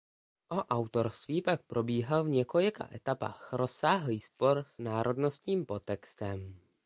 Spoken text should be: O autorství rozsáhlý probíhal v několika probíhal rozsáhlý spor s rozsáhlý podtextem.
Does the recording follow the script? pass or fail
fail